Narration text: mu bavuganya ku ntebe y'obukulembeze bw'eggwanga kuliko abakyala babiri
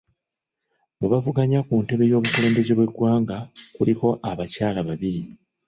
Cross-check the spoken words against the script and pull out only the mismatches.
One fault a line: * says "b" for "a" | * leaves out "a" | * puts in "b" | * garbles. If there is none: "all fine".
all fine